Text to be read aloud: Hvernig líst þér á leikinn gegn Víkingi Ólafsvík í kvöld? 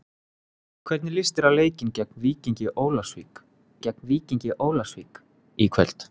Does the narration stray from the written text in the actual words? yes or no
yes